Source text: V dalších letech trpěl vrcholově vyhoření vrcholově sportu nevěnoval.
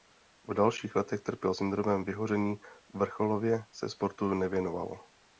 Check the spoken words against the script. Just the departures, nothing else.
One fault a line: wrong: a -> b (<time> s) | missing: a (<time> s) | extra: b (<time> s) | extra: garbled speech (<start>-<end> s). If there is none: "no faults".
wrong: vrcholově -> syndromem (1.5 s)
extra: se (3.7 s)